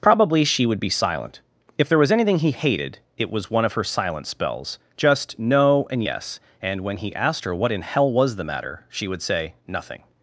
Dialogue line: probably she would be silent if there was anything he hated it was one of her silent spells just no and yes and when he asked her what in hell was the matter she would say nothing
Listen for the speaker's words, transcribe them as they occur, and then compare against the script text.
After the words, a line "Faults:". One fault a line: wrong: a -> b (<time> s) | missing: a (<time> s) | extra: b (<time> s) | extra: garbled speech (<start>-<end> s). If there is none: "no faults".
probably she would be silent if there was anything he hated it was one of her silent spells just no and yes and when he asked her what in hell was the matter she would say nothing
Faults:
no faults